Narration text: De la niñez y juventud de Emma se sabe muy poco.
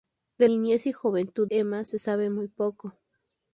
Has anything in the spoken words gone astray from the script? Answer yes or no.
yes